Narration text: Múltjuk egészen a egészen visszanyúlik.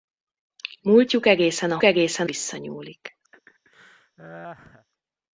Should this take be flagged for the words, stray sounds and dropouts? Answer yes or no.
yes